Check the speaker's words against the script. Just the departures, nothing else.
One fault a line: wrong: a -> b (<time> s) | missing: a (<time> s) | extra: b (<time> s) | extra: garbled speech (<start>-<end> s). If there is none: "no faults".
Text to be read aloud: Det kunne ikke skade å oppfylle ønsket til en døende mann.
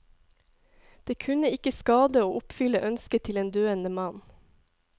no faults